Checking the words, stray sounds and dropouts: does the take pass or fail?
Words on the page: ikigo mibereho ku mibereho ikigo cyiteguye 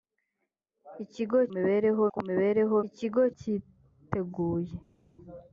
pass